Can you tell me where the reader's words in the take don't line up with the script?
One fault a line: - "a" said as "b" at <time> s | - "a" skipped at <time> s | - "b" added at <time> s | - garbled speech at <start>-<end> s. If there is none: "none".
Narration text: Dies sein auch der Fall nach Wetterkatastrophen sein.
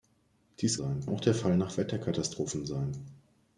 none